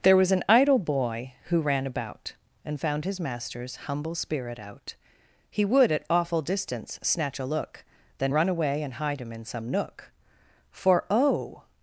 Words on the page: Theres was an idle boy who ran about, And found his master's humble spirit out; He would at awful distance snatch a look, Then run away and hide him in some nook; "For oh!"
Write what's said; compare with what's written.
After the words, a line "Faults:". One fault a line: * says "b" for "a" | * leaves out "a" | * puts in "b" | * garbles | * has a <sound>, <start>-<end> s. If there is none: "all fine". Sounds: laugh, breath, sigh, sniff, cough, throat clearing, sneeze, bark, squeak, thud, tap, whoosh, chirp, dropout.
There was an idle boy who ran about, And found his master's humble spirit out; He would at awful distance snatch a look, Then run away and hide him in some nook; "For oh!"
Faults:
* says "There" for "Theres"